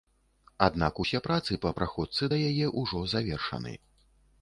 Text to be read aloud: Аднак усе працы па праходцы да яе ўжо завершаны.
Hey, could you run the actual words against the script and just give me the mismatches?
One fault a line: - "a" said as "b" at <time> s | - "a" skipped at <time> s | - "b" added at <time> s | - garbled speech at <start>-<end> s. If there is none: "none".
none